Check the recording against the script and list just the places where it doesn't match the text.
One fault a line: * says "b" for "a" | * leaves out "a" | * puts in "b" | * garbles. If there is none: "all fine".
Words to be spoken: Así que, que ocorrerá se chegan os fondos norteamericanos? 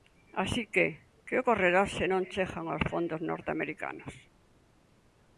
* puts in "non"